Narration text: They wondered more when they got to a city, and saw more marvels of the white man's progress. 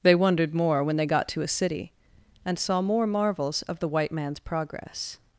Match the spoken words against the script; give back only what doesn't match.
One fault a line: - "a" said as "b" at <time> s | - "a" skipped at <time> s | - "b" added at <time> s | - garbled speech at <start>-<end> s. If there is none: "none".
none